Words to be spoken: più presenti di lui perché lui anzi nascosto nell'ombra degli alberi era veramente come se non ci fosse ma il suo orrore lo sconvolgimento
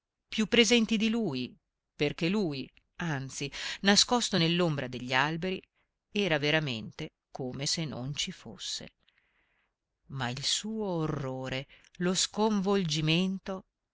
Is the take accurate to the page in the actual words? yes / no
yes